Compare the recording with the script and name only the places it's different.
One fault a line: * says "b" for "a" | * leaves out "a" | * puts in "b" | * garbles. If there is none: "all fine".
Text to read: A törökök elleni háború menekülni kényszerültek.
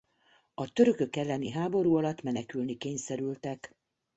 * puts in "alatt"